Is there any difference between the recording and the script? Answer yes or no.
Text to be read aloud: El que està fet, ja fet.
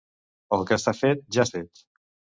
no